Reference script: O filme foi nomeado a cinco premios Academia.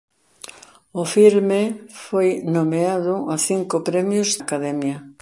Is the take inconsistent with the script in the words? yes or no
no